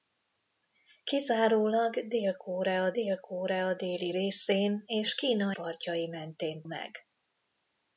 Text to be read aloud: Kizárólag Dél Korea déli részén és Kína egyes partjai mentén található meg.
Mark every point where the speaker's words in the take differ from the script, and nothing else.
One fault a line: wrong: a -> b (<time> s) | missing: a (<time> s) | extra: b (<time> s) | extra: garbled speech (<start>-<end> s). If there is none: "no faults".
extra: Dél Korea (2.9 s)
missing: egyes (5.5 s)
missing: található (6.6 s)